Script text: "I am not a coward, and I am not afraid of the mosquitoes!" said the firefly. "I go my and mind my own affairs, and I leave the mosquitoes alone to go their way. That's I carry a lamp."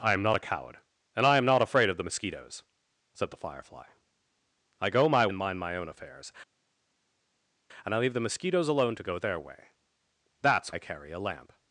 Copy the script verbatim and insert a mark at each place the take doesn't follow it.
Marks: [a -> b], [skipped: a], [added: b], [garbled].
"I am not a coward, and I am not afraid of the mosquitoes!" said the firefly. "I go my and mind my own affairs, and I leave the mosquitoes alone to go their way. That's I carry a lamp."